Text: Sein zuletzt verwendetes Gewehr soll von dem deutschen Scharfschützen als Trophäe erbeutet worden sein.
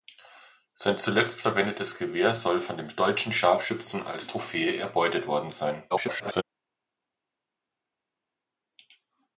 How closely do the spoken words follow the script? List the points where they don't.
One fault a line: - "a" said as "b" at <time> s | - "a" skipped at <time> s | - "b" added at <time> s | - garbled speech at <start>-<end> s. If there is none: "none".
- garbled speech at 5.9-6.4 s